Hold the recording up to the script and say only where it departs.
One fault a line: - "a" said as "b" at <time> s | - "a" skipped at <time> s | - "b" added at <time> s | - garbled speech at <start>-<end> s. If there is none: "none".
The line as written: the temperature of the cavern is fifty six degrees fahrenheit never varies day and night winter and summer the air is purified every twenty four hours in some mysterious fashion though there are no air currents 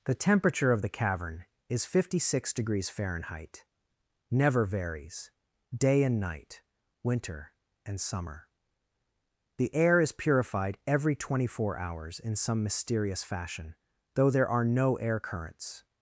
none